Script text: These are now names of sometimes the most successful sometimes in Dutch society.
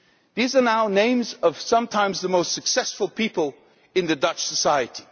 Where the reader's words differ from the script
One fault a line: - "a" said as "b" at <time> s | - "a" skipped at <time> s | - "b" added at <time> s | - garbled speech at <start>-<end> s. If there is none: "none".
- "sometimes" said as "people" at 3.1 s